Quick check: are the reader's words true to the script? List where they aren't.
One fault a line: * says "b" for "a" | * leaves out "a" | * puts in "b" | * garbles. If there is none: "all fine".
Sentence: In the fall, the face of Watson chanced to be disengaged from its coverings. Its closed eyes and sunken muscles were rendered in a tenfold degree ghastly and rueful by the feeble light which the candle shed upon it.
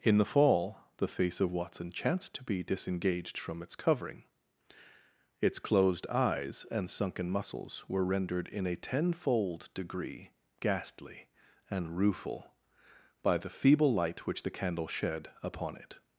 * says "covering" for "coverings"